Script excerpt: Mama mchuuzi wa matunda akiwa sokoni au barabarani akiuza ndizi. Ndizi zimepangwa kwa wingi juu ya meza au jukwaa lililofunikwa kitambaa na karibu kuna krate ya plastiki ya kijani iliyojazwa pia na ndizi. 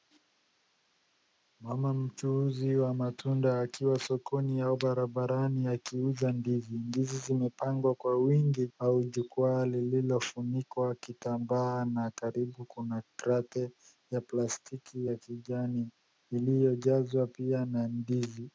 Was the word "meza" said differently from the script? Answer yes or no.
yes